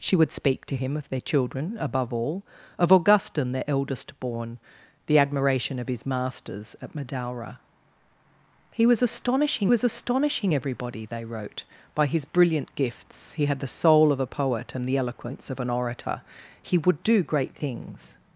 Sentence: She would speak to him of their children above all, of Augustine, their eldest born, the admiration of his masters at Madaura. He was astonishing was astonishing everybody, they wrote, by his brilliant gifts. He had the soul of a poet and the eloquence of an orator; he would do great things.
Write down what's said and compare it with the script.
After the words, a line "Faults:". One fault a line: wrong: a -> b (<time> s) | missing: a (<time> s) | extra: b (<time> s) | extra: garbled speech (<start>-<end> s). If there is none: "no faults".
She would speak to him of their children above all, of Augustine, their eldest born, the admiration of his masters at Madaura. He was astonishing was astonishing everybody, they wrote, by his brilliant gifts. He had the soul of a poet and the eloquence of an orator; he would do great things.
Faults:
no faults